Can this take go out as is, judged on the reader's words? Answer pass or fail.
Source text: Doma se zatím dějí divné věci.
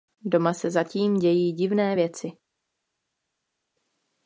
pass